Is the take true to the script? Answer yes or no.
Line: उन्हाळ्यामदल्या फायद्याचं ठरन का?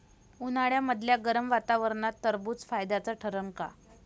no